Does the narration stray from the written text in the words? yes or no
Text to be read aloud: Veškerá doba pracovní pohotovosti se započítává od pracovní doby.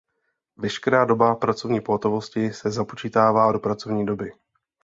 yes